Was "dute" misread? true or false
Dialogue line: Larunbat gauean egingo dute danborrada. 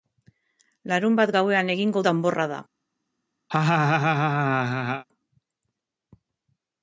true